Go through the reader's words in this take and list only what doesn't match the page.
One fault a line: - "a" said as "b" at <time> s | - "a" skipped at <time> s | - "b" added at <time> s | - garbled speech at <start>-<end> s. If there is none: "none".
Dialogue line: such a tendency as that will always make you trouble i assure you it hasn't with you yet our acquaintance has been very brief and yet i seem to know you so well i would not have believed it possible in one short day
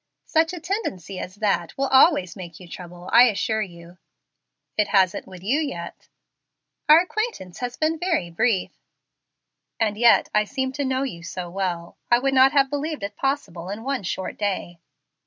none